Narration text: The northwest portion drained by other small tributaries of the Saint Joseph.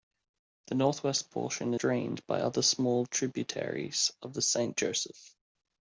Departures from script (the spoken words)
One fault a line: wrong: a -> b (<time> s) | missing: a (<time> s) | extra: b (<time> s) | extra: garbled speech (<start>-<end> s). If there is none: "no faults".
no faults